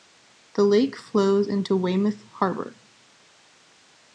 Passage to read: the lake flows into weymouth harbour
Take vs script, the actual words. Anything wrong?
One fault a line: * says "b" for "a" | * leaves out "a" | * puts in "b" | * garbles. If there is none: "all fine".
all fine